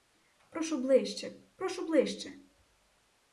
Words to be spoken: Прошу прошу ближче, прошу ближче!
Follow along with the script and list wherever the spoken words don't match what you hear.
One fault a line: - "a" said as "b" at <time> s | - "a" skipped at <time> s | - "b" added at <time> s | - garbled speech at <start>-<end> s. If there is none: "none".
- "прошу" skipped at 0.8 s